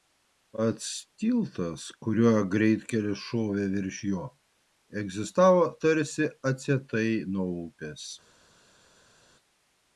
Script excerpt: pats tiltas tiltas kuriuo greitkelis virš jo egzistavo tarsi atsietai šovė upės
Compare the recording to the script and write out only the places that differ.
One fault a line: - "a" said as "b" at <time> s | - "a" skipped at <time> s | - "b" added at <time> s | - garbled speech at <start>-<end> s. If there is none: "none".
- "tiltas" skipped at 1.8 s
- "šovė" added at 3.3 s
- "šovė" said as "nuo" at 7.4 s